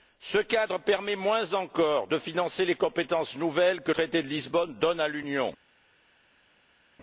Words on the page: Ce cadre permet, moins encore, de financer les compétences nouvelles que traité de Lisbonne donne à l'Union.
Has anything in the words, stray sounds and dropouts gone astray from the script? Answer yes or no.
no